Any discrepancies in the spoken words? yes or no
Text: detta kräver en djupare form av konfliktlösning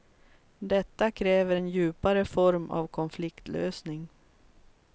no